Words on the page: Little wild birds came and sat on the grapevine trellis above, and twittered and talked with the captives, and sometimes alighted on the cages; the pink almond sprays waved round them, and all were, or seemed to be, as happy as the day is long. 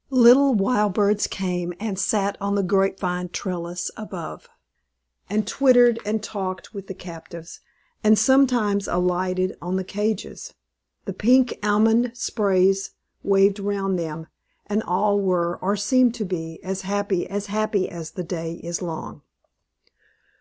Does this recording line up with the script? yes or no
no